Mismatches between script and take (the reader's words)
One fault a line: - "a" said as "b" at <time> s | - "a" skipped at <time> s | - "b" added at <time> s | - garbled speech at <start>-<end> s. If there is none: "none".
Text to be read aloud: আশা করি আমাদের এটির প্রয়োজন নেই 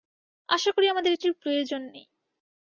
none